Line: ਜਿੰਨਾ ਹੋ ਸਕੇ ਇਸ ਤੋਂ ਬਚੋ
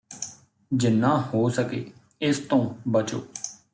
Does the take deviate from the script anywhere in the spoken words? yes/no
no